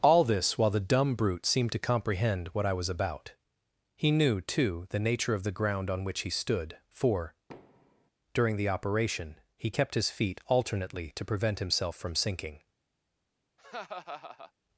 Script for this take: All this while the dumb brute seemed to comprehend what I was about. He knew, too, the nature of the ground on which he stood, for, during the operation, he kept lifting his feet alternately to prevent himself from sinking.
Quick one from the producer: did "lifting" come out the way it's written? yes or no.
no